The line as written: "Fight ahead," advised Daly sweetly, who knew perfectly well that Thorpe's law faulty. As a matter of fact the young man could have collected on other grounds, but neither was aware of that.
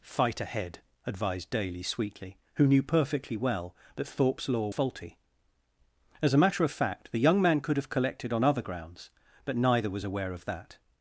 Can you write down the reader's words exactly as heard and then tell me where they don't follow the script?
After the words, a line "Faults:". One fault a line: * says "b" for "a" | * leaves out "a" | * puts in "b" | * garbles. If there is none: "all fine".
"Fight ahead," advised Daly sweetly, who knew perfectly well that Thorpe's law faulty. As a matter of fact the young man could have collected on other grounds, but neither was aware of that.
Faults:
all fine